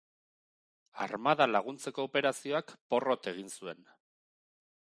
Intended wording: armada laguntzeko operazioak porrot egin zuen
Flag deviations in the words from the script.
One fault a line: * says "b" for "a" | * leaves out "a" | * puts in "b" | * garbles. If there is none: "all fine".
all fine